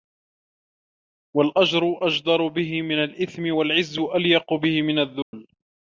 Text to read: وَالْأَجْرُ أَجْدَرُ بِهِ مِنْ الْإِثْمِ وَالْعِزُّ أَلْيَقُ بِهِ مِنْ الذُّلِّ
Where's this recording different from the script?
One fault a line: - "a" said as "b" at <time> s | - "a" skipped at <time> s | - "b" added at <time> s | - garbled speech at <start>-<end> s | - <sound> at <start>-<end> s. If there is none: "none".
- dropout at 5.2-5.3 s